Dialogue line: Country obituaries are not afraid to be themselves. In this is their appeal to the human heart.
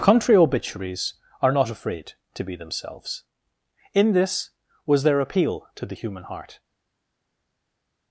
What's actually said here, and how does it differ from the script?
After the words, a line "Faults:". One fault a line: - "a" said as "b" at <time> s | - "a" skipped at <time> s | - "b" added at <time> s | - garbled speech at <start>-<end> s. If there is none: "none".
Country obituaries are not afraid to be themselves. In this was their appeal to the human heart.
Faults:
- "is" said as "was" at 4.9 s